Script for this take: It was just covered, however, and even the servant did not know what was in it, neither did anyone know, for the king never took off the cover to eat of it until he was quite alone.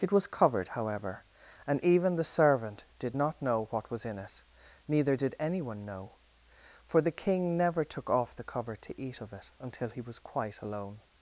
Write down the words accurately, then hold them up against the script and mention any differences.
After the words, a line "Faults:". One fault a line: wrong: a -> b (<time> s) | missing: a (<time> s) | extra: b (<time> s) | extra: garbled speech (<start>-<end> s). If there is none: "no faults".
It was covered, however, and even the servant did not know what was in it, neither did anyone know, for the king never took off the cover to eat of it until he was quite alone.
Faults:
missing: just (0.2 s)